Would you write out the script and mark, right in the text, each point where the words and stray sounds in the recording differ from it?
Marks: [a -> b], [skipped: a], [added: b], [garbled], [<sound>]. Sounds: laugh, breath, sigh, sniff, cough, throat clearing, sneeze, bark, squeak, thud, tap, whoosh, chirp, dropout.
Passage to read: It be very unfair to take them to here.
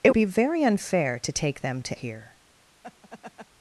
It be very unfair to take them to here. [laugh]